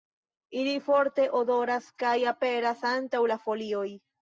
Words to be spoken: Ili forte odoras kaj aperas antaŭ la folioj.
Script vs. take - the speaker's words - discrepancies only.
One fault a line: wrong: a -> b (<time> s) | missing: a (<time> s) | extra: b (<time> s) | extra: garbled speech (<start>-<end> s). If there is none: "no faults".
no faults